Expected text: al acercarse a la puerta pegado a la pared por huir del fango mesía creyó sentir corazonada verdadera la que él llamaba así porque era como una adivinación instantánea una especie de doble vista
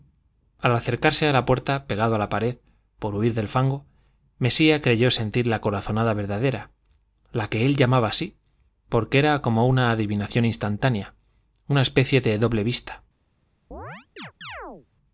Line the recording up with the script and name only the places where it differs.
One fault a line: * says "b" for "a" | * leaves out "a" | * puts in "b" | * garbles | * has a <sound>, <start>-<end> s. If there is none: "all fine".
* puts in "la"
* has a chirp, 13.7-14.9 s